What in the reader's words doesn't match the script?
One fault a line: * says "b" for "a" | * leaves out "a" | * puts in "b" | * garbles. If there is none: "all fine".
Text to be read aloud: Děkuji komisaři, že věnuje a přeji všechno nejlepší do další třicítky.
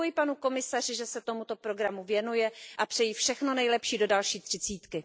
* puts in "panu"
* puts in "se tomuto programu"